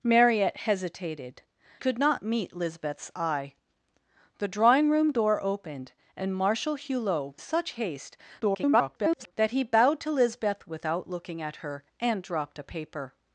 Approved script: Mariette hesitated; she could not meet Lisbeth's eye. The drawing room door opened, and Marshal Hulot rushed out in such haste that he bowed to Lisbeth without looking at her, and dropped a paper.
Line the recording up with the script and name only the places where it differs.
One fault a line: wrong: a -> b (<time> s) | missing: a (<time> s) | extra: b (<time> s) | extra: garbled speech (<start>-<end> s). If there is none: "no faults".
missing: she (1.4 s)
missing: rushed out in (7.3 s)
extra: garbled speech (8.4-9.3 s)